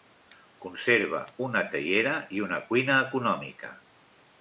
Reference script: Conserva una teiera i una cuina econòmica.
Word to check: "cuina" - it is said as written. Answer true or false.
true